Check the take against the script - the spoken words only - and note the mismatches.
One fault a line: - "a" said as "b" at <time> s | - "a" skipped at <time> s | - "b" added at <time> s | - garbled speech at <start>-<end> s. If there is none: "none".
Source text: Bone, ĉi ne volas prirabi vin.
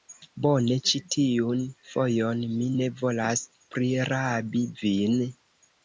- "tiun fojon mi" added at 1.1 s